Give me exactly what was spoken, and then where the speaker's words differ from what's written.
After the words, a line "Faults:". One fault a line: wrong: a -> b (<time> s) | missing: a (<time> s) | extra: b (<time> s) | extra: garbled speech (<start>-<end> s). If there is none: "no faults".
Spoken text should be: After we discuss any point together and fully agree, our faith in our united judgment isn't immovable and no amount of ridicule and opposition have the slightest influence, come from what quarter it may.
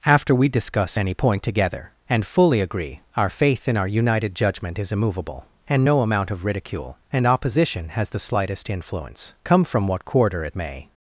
After we discuss any point together and fully agree, our faith in our united judgment is immovable and no amount of ridicule and opposition has the slightest influence, come from what quarter it may.
Faults:
wrong: isn't -> is (4.8 s)
wrong: have -> has (7.9 s)